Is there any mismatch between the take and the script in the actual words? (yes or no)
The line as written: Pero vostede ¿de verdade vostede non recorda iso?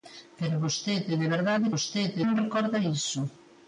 no